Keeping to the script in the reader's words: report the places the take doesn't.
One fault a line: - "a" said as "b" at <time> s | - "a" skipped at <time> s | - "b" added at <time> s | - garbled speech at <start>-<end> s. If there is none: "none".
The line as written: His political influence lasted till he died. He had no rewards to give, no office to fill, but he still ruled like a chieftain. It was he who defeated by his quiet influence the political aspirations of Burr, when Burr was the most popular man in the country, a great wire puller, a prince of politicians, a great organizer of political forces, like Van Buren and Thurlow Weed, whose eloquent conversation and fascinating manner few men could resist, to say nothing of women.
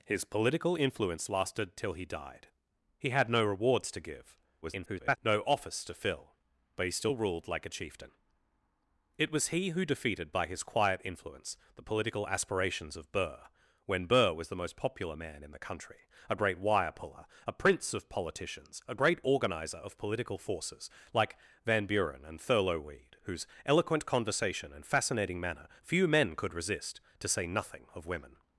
- garbled speech at 4.6-5.2 s